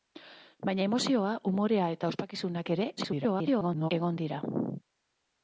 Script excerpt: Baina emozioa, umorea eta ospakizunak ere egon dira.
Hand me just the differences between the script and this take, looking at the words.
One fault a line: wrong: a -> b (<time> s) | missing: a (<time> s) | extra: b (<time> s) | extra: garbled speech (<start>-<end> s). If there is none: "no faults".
extra: garbled speech (3.0-3.9 s)